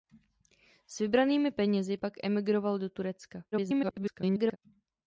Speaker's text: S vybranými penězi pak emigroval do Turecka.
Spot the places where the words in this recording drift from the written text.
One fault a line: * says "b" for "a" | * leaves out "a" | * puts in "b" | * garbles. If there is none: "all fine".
* garbles